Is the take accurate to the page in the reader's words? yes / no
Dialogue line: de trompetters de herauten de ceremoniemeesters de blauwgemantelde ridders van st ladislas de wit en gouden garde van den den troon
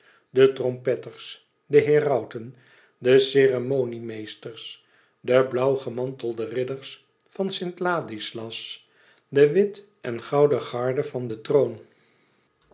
no